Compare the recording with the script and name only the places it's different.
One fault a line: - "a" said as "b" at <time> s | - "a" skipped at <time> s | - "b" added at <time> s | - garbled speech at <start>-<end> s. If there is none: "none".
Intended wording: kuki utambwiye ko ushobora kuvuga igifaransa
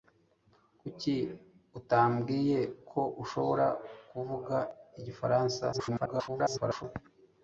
- garbled speech at 5.7-6.8 s